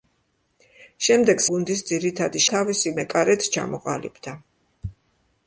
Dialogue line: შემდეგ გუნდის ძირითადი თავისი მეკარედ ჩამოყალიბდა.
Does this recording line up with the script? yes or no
yes